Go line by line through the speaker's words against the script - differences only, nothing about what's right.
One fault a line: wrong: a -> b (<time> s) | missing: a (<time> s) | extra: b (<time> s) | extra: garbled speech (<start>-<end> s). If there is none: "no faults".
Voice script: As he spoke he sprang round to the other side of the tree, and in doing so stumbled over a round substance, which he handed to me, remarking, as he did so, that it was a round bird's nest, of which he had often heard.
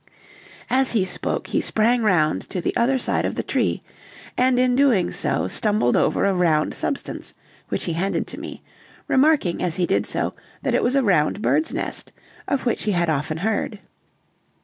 no faults